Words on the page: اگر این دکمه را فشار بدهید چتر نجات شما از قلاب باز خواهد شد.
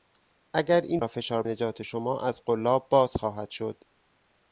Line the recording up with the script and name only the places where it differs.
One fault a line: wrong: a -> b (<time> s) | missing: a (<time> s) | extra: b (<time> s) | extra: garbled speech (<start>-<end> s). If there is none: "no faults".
missing: دکمه (1.0 s)
missing: بدهید چتر (1.4 s)